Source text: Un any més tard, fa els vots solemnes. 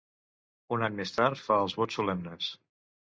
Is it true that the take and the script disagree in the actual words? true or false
false